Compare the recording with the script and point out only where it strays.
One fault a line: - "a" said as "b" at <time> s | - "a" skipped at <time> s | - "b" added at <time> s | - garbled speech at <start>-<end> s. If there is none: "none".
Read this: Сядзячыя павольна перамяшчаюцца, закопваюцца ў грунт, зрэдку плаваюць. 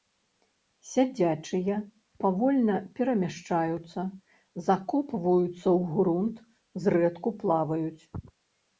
none